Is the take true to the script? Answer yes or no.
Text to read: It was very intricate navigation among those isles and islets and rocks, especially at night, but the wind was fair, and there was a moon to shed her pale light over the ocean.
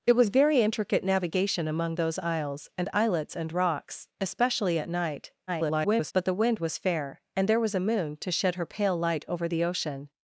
no